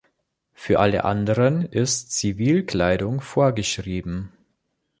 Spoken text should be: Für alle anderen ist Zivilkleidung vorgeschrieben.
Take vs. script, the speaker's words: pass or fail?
pass